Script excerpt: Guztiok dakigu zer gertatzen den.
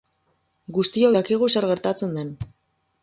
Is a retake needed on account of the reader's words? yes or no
no